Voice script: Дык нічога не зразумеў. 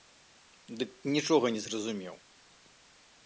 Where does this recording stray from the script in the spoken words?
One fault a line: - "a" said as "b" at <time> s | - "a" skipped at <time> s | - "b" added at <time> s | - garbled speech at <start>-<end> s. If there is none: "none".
none